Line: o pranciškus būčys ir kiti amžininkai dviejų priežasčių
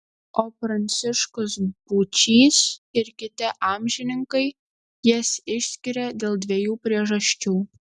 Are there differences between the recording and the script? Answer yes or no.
yes